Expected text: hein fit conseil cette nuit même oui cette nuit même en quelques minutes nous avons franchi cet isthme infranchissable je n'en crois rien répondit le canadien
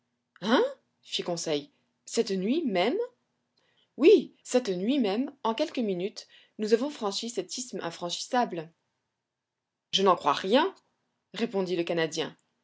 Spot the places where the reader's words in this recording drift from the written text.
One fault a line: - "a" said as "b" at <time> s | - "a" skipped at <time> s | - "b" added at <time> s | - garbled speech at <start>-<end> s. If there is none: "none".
none